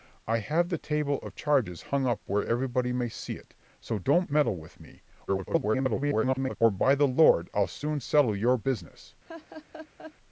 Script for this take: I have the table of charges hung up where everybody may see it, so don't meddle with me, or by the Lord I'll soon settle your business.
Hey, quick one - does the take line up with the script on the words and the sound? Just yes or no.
no